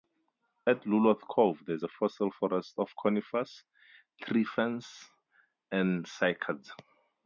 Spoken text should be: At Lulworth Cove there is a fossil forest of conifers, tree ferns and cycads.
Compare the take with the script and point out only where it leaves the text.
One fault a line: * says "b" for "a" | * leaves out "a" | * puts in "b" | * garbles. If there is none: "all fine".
all fine